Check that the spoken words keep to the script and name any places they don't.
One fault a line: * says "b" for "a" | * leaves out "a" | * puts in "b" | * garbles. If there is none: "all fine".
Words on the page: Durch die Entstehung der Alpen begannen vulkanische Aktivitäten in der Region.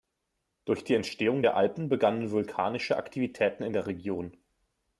all fine